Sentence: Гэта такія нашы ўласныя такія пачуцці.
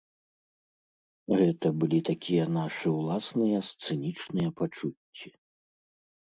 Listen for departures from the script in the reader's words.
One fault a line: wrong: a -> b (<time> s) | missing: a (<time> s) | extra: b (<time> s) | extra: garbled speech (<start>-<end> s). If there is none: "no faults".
extra: былі (1.8 s)
wrong: такія -> сцэнічныя (3.7 s)